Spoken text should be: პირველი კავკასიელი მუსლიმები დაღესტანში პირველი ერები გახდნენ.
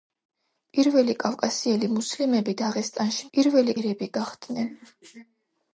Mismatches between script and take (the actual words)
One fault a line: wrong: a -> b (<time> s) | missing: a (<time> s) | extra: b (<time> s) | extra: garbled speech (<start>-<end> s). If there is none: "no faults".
no faults